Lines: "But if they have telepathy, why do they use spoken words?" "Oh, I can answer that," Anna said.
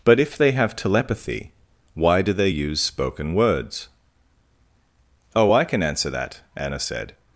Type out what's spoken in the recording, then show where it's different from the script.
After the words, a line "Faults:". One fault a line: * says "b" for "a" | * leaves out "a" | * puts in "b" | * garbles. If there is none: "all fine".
"But if they have telepathy, why do they use spoken words?" "Oh, I can answer that," Anna said.
Faults:
all fine